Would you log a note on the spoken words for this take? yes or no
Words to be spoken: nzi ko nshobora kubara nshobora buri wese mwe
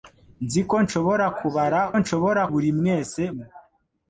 no